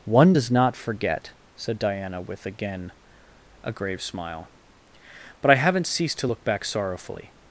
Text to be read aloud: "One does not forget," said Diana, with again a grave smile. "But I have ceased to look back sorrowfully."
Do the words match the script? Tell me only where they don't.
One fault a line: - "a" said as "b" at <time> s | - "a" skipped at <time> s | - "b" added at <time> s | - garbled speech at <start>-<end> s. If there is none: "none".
- "have" said as "haven't" at 5.5 s